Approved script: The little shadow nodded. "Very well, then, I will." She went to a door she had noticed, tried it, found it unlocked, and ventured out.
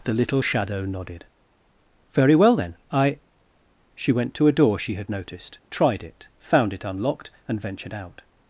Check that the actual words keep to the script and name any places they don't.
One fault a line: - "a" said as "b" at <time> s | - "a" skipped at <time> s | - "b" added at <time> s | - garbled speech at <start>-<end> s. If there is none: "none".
- "will" skipped at 3.2 s